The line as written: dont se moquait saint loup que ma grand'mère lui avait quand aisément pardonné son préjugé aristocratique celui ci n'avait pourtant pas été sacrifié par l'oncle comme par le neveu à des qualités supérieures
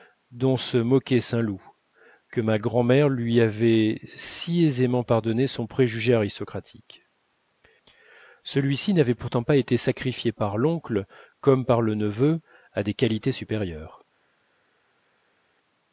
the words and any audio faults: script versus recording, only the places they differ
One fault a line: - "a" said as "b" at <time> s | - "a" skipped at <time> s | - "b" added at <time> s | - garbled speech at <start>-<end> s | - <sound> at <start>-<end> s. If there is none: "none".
- "quand" said as "si" at 4.0 s